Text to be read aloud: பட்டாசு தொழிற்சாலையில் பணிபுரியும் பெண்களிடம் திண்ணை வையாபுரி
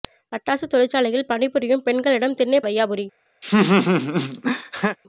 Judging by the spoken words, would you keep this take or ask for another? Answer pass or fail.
pass